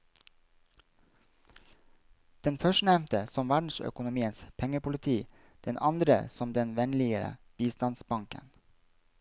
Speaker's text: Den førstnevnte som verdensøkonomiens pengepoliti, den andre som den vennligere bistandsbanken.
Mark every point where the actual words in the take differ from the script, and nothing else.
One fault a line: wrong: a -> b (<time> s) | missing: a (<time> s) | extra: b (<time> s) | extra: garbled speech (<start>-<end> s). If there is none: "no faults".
no faults